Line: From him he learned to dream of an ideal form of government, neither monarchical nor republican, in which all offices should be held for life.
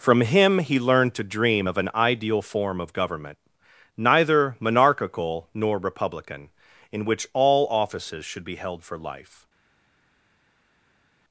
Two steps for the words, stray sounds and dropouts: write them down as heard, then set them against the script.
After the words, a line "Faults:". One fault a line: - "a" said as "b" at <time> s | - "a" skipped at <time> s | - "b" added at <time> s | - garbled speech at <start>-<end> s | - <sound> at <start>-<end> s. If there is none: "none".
From him he learned to dream of an ideal form of government, neither monarchical nor republican, in which all offices should be held for life.
Faults:
none